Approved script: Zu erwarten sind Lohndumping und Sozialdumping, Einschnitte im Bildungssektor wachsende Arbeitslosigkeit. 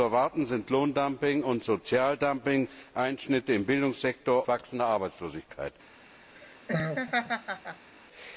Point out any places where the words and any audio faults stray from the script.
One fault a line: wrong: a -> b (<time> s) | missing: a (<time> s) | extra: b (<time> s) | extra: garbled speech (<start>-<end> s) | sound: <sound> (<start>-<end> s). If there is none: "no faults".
sound: laugh (6.4-7.9 s)